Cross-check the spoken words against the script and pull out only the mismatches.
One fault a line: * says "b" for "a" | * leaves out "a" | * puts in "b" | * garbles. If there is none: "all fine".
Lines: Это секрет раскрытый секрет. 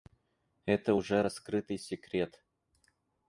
* says "уже" for "секрет"